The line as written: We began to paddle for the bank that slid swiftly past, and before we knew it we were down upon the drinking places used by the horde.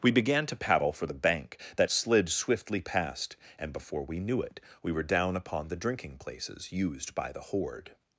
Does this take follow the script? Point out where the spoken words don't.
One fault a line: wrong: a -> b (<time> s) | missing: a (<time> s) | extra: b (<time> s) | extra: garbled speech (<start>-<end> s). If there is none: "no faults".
no faults